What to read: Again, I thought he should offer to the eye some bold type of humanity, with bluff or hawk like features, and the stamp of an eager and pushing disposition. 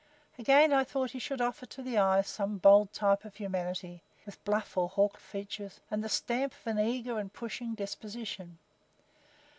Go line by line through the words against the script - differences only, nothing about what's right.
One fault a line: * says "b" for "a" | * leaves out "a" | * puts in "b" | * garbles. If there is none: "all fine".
* leaves out "like"